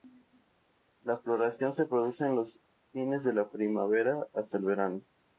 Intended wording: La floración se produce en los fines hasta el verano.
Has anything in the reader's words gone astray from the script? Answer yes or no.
yes